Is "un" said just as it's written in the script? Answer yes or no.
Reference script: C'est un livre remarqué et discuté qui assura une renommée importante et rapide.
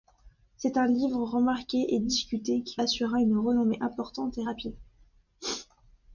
yes